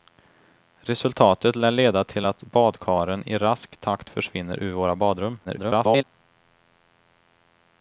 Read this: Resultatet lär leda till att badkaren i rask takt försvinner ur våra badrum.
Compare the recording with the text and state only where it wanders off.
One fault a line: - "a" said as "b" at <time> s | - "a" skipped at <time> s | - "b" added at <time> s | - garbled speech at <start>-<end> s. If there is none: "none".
- garbled speech at 5.4-6.0 s